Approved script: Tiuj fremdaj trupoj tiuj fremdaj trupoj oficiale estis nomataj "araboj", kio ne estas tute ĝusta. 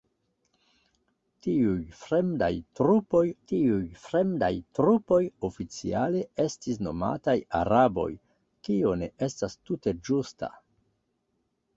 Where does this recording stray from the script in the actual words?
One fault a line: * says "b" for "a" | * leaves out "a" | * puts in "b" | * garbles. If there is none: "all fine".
all fine